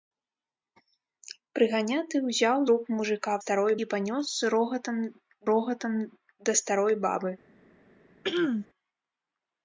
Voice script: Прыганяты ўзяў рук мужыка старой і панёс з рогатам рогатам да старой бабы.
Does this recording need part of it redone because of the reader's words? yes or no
no